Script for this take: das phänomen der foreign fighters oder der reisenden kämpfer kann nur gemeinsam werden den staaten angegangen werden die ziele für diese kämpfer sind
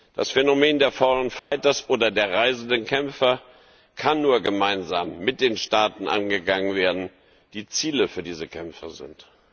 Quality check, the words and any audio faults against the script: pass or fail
fail